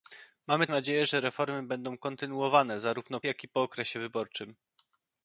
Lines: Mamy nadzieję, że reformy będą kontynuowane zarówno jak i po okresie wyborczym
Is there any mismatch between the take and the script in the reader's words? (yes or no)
no